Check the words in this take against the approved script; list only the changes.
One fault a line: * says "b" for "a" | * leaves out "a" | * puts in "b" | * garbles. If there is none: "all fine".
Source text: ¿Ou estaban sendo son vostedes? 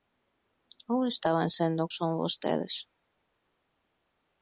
all fine